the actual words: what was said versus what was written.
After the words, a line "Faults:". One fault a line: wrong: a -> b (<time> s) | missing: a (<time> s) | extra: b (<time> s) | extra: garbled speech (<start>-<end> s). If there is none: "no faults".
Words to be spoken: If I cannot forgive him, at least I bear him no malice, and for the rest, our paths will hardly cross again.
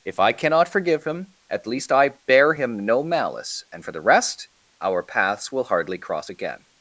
If I cannot forgive him, at least I bear him no malice, and for the rest, our paths will hardly cross again.
Faults:
no faults